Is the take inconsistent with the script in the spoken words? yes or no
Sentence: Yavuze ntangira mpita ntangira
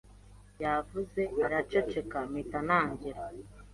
yes